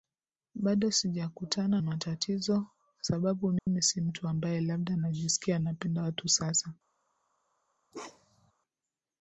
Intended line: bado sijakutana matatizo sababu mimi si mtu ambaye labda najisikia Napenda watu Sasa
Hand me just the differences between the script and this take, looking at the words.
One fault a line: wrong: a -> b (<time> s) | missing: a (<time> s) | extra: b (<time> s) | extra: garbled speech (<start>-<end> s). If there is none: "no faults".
no faults